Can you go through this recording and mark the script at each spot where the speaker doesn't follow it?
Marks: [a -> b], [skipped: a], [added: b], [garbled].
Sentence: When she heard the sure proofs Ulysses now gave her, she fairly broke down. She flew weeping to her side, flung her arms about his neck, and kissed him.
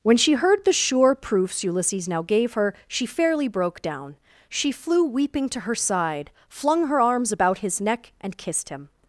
When she heard the sure proofs Ulysses now gave her, she fairly broke down. She flew weeping to her side, flung her arms about his neck, and kissed him.